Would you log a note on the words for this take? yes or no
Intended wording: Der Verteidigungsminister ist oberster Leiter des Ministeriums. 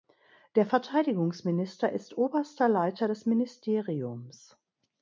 no